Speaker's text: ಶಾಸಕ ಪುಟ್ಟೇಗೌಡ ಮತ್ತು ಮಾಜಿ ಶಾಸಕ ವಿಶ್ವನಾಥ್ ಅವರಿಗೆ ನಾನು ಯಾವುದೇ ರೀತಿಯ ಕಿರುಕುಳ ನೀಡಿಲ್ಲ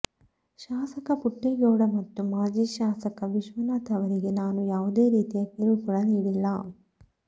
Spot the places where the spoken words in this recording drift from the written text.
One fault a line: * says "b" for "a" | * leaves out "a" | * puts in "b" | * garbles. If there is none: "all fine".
all fine